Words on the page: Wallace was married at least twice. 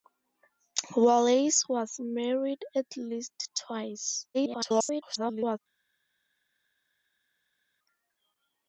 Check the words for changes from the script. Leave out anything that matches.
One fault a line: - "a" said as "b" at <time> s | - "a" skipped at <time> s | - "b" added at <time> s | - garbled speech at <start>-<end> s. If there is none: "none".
- garbled speech at 4.3-5.6 s